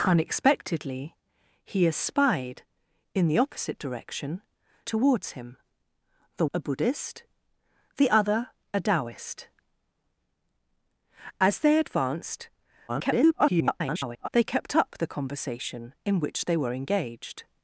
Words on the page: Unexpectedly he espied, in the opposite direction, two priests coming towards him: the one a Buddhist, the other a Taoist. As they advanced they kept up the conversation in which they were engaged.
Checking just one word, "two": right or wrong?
wrong